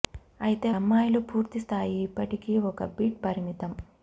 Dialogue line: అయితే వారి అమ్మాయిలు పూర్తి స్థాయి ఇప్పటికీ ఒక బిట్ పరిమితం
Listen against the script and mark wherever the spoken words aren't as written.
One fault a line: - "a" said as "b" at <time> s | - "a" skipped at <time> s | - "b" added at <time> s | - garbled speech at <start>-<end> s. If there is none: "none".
- "వారి" skipped at 0.7 s